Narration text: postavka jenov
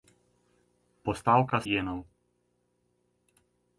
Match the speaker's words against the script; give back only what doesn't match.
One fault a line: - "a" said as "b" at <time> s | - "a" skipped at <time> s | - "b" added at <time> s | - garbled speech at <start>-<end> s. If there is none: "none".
none